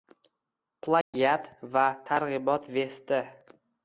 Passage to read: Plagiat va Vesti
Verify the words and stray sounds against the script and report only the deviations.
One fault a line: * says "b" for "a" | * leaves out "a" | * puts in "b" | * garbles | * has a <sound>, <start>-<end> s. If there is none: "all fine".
* has a dropout, 1.0-1.1 s
* puts in "targ'ibot"